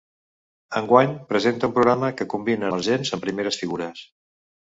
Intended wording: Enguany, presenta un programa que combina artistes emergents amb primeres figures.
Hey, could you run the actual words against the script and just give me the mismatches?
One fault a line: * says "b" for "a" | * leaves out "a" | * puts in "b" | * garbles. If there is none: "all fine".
* leaves out "artistes"